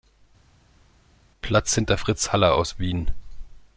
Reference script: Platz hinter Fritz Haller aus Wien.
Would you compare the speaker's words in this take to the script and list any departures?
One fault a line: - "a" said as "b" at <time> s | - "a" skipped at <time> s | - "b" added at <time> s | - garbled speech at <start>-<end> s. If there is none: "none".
none